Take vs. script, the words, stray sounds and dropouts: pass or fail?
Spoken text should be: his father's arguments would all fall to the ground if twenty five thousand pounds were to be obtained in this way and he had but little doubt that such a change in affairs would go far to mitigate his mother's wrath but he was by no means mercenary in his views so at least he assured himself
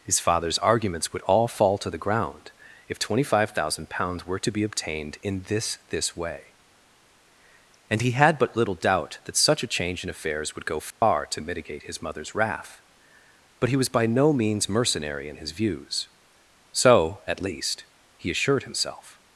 fail